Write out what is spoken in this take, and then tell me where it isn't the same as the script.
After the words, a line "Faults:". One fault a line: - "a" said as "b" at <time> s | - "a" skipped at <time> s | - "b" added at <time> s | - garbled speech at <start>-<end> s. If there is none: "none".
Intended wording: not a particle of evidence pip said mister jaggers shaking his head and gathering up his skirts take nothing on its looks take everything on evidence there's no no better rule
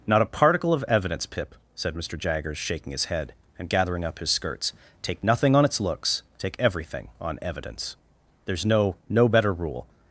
not a particle of evidence pip said mister jaggers shaking his head and gathering up his skirts take nothing on its looks take everything on evidence there's no no better rule
Faults:
none